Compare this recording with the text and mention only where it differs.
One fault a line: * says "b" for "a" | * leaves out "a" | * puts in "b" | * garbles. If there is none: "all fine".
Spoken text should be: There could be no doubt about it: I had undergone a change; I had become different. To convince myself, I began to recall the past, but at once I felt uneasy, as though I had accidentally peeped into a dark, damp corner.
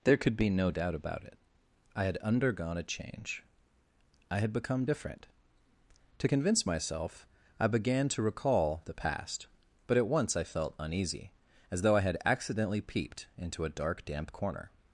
all fine